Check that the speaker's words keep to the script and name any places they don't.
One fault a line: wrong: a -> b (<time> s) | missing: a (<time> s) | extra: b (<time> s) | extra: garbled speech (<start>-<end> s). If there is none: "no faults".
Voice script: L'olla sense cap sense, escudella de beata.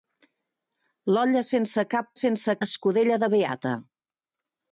no faults